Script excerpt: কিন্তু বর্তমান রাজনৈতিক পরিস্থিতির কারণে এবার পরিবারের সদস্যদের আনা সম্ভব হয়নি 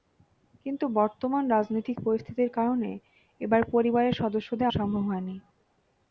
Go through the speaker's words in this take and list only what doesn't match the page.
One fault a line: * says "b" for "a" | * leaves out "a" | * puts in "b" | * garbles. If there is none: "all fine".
* leaves out "আনা"